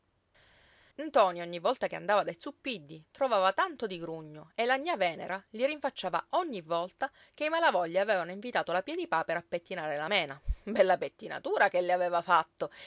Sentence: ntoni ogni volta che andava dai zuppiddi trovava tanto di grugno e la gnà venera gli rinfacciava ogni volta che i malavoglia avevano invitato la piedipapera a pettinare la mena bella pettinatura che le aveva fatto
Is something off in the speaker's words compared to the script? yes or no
no